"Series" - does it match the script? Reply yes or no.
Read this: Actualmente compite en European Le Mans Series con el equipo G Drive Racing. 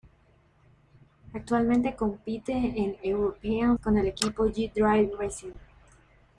no